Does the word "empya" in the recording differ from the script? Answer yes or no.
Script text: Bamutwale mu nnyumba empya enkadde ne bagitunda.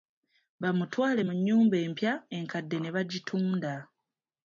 no